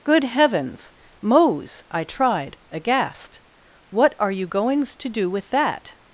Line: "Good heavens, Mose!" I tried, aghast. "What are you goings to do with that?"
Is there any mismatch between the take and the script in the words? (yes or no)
no